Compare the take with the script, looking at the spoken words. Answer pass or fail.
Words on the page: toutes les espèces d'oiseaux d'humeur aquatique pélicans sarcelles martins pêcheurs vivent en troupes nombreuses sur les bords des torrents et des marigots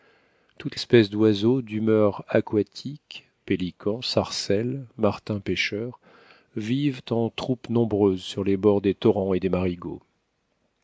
fail